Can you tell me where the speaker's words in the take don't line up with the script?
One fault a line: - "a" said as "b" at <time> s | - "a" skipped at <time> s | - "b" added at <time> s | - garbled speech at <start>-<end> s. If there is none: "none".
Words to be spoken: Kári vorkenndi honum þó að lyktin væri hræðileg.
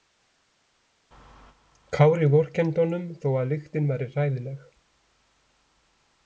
none